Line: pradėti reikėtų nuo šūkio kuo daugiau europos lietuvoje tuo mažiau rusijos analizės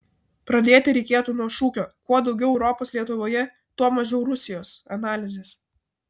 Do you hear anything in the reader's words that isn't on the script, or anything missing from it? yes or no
no